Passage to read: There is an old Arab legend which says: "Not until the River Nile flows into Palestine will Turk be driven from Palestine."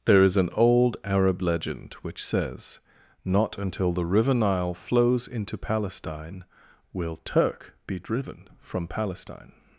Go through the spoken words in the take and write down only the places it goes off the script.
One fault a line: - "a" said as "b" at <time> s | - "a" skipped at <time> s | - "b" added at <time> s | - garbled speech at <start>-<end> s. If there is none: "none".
none